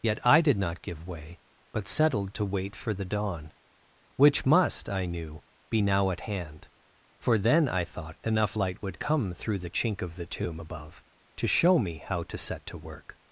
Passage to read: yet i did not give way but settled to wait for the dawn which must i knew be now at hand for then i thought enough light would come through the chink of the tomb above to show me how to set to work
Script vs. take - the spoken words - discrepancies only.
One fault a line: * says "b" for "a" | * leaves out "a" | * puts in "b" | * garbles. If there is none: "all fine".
all fine